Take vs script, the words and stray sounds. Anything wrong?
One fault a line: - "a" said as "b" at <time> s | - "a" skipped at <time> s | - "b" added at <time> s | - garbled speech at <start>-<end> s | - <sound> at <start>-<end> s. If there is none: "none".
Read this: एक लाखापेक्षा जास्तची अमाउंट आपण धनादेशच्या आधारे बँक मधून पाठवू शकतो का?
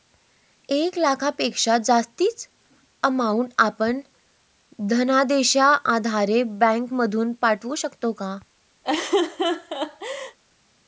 - laugh at 8.8-10.4 s